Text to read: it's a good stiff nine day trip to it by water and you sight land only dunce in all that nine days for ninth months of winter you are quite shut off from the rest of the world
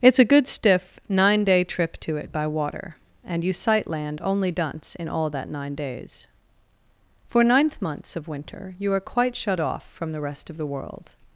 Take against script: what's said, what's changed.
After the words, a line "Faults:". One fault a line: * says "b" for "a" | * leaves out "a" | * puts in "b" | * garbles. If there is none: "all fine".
it's a good stiff nine day trip to it by water and you sight land only dunce in all that nine days for ninth months of winter you are quite shut off from the rest of the world
Faults:
all fine